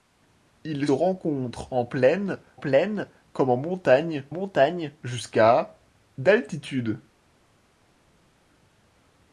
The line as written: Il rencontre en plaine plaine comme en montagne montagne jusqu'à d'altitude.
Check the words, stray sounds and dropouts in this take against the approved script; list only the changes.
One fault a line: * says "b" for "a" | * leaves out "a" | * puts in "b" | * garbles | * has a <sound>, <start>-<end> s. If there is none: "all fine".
all fine